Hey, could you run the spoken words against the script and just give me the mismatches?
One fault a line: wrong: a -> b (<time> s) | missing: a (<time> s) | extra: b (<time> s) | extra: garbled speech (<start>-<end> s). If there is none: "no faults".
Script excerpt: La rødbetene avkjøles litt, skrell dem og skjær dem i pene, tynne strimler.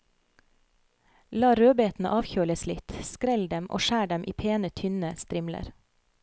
no faults